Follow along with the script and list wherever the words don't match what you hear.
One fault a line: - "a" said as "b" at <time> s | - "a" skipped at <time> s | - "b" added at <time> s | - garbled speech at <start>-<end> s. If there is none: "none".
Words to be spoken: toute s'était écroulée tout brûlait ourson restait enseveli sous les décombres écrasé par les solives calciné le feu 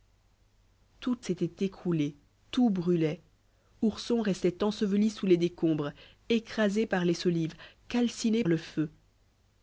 none